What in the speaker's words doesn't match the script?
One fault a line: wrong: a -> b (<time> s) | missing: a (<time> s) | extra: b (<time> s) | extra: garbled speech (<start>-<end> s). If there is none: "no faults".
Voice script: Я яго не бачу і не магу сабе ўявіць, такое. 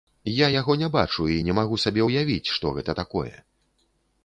extra: што гэта (2.6 s)